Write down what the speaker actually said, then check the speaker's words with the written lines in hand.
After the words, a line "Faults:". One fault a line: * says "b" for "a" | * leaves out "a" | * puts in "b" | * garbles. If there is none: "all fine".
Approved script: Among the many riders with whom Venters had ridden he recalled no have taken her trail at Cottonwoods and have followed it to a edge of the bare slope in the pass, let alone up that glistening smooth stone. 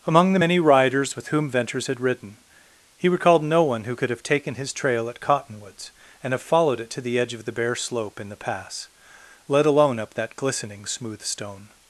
Among the many riders with whom Venters had ridden he recalled no one who could have taken his trail at Cottonwoods and have followed it to the edge of the bare slope in the pass, let alone up that glistening smooth stone.
Faults:
* puts in "one who could"
* says "his" for "her"
* says "the" for "a"